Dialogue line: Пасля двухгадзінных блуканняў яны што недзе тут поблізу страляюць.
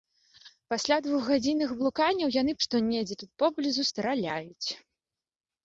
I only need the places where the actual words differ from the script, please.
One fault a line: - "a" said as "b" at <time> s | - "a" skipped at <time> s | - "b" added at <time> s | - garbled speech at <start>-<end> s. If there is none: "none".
none